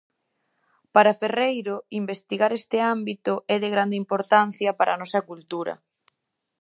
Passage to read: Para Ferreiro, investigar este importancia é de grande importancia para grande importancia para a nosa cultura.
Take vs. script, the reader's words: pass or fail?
fail